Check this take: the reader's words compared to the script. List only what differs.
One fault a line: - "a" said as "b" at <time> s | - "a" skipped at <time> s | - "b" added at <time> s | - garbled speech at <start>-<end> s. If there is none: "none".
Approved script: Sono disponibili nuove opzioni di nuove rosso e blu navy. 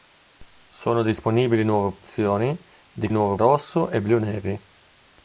none